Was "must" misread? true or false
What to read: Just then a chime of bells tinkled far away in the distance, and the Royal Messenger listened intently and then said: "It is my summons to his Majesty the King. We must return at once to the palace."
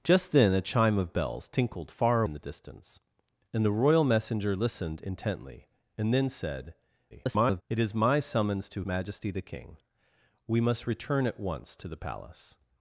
false